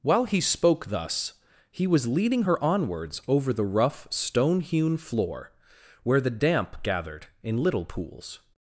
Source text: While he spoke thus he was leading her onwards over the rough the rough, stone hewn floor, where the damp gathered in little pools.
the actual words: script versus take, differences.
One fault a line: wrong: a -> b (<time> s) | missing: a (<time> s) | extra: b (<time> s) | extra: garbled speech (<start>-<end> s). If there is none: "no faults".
missing: the rough (4.1 s)